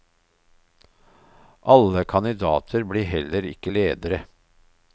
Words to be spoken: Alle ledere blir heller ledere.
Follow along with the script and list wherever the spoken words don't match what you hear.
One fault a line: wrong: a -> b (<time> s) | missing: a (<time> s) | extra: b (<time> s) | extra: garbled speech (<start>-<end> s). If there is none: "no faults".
wrong: ledere -> kandidater (2.0 s)
extra: ikke (3.4 s)